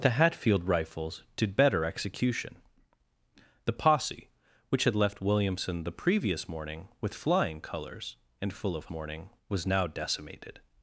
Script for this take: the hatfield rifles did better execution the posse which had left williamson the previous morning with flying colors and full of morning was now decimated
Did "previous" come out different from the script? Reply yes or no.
no